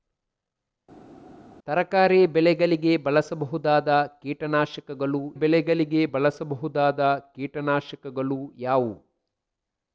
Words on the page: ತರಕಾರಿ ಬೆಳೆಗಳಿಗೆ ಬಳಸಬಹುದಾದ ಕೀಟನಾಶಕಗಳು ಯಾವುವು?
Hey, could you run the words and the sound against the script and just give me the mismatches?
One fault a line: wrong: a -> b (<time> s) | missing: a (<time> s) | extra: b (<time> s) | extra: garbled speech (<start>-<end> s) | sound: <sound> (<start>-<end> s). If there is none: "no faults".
extra: ಬೆಳೆಗಳಿಗೆ ಬಳಸಬಹುದಾದ ಕೀಟನಾಶಕಗಳು (5.3 s)